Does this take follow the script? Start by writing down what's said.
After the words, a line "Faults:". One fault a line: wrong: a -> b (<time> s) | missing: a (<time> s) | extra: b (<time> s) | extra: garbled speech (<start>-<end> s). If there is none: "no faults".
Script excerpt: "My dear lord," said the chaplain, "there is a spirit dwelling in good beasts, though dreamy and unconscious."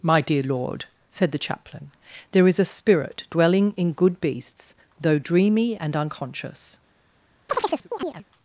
"My dear lord," said the chaplain, "there is a spirit dwelling in good beasts, though dreamy and unconscious."
Faults:
no faults